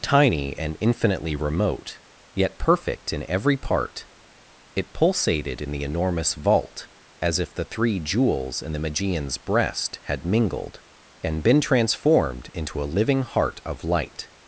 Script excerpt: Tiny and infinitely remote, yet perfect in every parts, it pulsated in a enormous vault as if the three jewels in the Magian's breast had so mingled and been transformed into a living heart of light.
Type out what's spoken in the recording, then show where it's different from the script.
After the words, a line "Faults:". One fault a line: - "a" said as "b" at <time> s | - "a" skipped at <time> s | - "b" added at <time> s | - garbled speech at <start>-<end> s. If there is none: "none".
Tiny and infinitely remote, yet perfect in every part, it pulsated in the enormous vault as if the three jewels in the Magian's breast had mingled and been transformed into a living heart of light.
Faults:
- "parts" said as "part" at 3.6 s
- "a" said as "the" at 5.7 s
- "so" skipped at 10.2 s